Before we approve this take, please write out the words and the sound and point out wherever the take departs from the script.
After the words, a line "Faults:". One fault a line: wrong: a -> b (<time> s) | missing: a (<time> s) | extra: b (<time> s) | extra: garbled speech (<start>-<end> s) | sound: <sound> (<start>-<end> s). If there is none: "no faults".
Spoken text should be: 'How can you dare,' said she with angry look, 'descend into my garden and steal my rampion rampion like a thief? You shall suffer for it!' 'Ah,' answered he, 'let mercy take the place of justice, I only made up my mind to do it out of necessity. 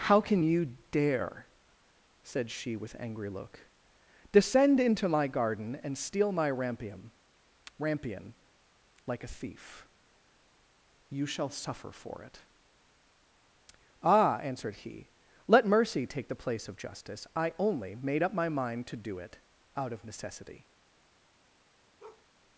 'How can you dare,' said she with angry look, 'descend into my garden and steal my rampion rampion like a thief? You shall suffer for it!' 'Ah,' answered he, 'let mercy take the place of justice, I only made up my mind to do it out of necessity.
Faults:
sound: bark (22.0-22.3 s)